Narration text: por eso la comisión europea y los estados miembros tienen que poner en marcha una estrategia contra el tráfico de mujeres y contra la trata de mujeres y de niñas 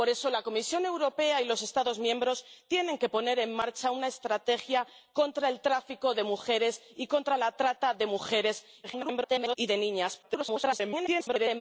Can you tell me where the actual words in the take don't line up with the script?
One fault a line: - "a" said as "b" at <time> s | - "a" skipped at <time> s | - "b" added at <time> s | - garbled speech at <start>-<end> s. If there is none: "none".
- garbled speech at 8.8-9.6 s
- garbled speech at 10.2-11.6 s